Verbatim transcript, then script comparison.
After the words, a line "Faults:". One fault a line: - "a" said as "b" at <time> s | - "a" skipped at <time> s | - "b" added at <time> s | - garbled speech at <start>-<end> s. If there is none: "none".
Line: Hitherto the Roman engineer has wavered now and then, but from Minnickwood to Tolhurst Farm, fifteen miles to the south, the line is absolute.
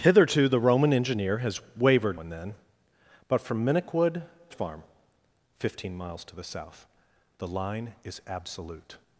Hitherto the Roman engineer has wavered and then, but from Minnickwood Farm, fifteen miles to the south, the line is absolute.
Faults:
- "now" skipped at 2.2 s
- "to Tolhurst" skipped at 4.2 s